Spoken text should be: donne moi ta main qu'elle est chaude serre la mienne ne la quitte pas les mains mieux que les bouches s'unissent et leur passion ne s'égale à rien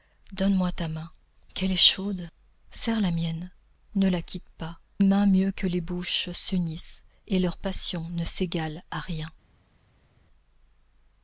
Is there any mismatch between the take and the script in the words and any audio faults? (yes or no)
yes